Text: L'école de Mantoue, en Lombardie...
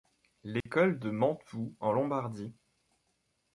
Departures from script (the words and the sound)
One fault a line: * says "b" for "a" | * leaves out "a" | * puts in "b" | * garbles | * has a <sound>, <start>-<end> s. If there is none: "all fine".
* has a dropout, 0.6-0.7 s